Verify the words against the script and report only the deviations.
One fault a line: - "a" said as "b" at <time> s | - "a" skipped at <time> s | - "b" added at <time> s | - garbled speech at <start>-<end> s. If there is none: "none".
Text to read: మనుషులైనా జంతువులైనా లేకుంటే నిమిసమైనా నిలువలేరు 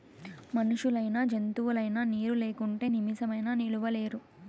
- "నీరు" added at 2.0 s